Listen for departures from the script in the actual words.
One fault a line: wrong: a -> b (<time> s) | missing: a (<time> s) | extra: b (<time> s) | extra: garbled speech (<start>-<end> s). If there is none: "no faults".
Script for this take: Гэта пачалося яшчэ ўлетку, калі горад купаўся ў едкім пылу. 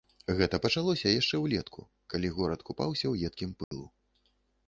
no faults